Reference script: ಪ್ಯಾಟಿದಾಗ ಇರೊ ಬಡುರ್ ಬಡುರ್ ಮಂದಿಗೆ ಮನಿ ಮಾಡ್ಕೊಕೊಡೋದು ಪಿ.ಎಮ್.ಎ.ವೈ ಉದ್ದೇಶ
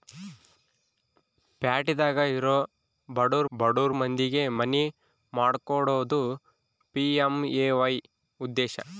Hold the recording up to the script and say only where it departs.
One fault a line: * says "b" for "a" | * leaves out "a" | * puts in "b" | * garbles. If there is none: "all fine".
all fine